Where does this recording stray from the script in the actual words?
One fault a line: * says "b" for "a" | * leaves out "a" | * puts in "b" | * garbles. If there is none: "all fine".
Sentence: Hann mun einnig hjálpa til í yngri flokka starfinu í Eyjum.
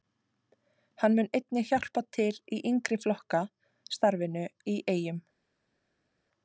all fine